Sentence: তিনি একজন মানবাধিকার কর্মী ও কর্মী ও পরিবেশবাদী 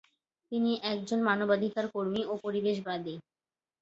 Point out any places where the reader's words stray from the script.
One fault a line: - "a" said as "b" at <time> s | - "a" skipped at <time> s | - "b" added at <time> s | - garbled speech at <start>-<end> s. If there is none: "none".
- "কর্মী ও" skipped at 2.4 s